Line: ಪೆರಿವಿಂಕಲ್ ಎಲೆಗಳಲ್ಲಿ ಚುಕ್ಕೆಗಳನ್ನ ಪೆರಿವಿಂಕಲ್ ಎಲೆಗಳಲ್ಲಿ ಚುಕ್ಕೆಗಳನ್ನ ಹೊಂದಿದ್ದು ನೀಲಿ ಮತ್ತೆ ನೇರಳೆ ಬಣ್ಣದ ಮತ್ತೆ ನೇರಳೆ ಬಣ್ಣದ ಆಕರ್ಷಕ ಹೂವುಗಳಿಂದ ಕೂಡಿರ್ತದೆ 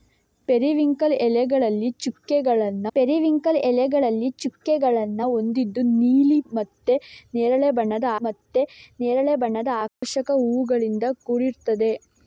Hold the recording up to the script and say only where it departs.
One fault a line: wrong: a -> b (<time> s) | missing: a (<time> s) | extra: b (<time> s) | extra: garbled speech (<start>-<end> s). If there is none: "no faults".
no faults